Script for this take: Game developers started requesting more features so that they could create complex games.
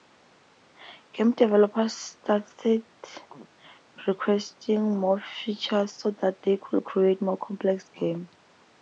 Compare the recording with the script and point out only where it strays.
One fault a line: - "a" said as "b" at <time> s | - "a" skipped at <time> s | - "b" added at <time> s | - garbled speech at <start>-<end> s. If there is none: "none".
- "more" added at 7.2 s